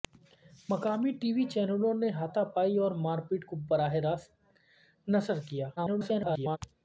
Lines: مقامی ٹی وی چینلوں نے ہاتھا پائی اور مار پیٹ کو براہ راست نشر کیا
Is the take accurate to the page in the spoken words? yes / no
no